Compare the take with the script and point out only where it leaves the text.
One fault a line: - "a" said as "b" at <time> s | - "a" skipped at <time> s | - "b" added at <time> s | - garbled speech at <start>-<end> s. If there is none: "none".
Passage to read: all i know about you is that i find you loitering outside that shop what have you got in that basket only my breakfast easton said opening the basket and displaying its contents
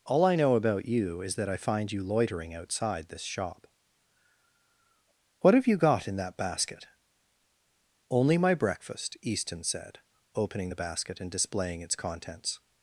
- "that" said as "this" at 3.1 s